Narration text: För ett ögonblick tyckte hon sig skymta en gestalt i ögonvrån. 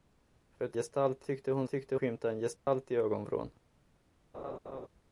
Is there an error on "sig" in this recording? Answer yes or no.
yes